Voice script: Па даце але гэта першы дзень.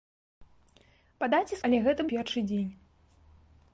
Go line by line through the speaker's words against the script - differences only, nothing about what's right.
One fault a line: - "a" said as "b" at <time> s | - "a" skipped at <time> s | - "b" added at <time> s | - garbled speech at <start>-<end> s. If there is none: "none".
none